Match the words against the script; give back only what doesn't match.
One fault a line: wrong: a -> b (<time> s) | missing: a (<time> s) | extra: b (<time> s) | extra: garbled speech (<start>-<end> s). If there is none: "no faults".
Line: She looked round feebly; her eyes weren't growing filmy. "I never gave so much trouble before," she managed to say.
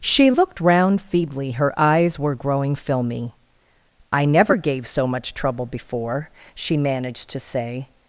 wrong: weren't -> were (2.2 s)